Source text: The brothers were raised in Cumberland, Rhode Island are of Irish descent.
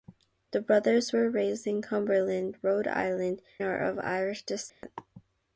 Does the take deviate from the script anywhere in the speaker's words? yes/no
no